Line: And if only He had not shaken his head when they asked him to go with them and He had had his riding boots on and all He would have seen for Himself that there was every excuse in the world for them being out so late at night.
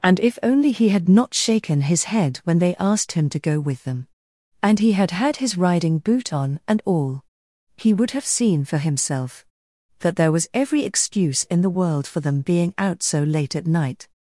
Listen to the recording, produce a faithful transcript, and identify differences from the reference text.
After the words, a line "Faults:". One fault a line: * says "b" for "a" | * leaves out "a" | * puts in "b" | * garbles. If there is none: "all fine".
And if only He had not shaken his head when they asked him to go with them and He had had his riding boot on and all He would have seen for Himself that there was every excuse in the world for them being out so late at night.
Faults:
* says "boot" for "boots"